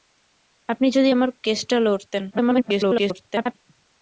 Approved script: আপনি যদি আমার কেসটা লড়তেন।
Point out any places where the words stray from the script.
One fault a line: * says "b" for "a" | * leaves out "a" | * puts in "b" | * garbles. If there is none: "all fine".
* garbles